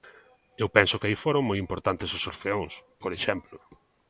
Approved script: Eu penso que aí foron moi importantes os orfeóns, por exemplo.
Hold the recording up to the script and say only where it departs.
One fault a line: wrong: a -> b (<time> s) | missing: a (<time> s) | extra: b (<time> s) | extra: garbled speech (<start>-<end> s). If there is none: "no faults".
no faults